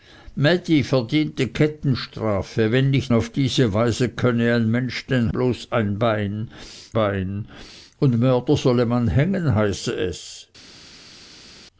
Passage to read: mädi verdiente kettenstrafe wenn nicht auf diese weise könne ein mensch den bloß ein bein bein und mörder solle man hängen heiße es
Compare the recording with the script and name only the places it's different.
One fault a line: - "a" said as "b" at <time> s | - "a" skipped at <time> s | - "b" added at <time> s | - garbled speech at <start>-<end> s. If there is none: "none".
none